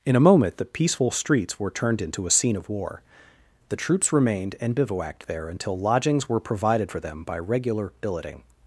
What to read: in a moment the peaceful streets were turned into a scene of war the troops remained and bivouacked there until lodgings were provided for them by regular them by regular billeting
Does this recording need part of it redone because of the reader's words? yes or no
yes